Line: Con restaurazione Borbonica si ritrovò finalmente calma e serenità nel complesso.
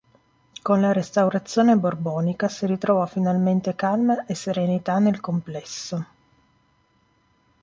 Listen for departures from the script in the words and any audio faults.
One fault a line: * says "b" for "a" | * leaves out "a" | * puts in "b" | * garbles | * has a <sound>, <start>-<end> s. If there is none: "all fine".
* puts in "la"